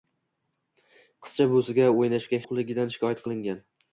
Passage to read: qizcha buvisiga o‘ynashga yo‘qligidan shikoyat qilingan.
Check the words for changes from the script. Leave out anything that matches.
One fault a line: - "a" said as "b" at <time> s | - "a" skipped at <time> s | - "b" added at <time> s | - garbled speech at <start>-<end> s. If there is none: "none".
none